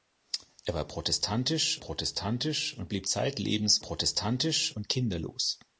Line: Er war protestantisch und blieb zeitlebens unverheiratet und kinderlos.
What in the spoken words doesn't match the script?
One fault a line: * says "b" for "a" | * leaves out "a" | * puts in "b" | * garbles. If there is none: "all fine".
* puts in "protestantisch"
* says "protestantisch" for "unverheiratet"